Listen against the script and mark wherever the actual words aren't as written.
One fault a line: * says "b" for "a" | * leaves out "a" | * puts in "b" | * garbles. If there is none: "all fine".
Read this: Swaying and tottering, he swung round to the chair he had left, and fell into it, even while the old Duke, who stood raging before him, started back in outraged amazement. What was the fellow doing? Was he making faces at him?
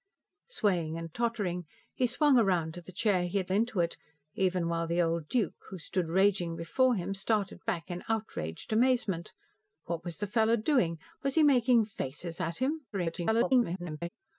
* leaves out "left and fell"
* garbles